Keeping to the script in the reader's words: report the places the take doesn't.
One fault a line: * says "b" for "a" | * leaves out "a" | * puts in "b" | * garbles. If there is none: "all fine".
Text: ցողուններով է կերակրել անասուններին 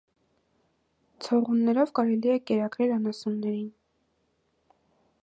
* puts in "կարելի"